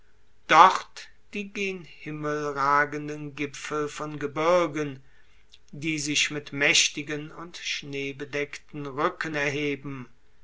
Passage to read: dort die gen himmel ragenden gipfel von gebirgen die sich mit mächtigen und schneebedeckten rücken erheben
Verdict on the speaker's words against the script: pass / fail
pass